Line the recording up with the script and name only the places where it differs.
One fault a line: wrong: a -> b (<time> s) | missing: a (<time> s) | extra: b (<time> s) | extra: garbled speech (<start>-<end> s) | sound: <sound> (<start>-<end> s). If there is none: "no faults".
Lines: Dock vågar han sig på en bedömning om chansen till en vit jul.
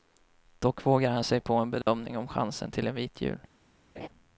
sound: dropout (1.8-1.9 s)
sound: laugh (4.0-4.1 s)